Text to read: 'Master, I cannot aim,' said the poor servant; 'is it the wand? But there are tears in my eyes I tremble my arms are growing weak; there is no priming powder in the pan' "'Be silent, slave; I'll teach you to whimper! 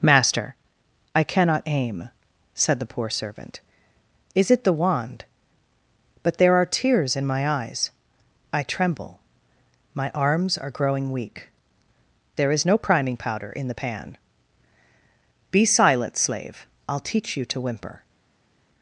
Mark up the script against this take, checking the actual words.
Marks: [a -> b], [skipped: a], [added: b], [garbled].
'Master, I cannot aim,' said the poor servant; 'is it the wand? But there are tears in my eyes I tremble my arms are growing weak; there is no priming powder in the pan' "'Be silent, slave; I'll teach you to whimper!